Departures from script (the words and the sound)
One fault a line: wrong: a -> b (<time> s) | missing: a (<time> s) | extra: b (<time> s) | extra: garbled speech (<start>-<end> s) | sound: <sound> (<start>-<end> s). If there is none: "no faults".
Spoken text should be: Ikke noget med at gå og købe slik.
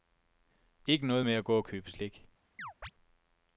sound: chirp (2.6-2.9 s)